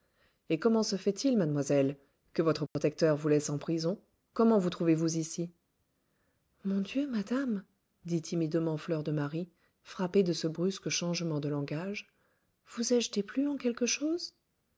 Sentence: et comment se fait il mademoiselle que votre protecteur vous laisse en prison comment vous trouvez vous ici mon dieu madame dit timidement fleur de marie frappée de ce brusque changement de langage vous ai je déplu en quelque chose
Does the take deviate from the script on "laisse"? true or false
false